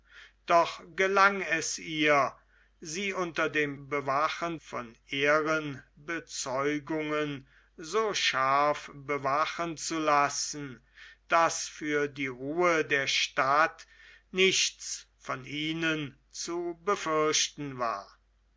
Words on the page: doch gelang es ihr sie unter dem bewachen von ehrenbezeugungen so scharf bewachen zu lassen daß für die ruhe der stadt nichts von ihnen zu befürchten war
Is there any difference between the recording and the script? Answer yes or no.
no